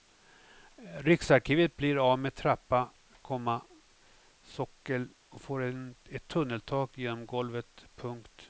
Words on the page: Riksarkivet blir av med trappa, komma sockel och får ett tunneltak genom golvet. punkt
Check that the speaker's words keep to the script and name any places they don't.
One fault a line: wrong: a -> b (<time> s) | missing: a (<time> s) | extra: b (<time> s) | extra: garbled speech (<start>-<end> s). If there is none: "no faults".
no faults